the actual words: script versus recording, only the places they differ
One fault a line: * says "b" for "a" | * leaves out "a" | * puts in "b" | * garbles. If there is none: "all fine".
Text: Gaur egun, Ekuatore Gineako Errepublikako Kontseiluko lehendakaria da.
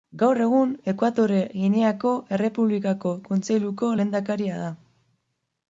all fine